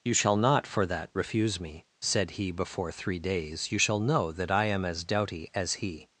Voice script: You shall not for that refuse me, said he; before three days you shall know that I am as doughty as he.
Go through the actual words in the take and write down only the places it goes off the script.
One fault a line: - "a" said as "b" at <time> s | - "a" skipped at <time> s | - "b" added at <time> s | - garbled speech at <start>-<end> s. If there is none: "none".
none